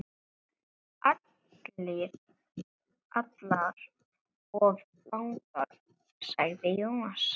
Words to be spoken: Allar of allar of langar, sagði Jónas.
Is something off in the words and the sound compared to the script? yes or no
yes